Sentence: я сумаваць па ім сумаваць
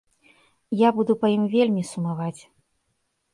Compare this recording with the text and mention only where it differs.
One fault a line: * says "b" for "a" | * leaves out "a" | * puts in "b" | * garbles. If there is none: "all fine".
* says "буду" for "сумаваць"
* puts in "вельмі"